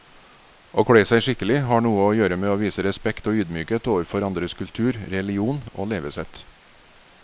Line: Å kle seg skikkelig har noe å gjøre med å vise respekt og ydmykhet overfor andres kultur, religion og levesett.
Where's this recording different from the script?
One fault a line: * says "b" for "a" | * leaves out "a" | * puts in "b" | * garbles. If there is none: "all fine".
all fine